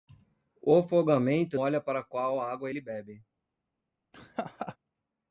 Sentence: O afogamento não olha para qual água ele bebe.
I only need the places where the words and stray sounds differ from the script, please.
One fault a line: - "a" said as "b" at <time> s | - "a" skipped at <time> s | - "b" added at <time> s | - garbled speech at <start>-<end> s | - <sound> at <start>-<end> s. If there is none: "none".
- "não" skipped at 1.6 s
- laugh at 4.1-4.8 s